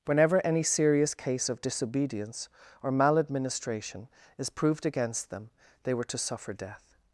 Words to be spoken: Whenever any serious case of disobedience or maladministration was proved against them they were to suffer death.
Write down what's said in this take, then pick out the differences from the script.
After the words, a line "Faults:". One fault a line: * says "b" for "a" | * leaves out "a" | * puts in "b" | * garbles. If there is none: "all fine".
Whenever any serious case of disobedience or maladministration is proved against them they were to suffer death.
Faults:
* says "is" for "was"